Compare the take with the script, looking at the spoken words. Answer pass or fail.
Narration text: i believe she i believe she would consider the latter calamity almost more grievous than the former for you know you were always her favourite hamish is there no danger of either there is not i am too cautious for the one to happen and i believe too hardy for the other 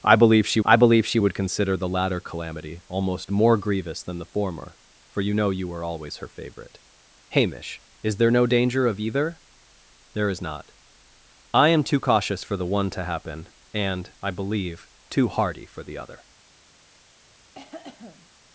pass